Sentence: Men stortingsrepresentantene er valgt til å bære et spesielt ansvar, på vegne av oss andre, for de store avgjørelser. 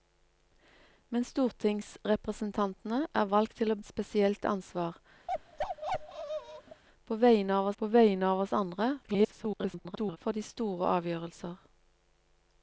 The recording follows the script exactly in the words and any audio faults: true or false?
false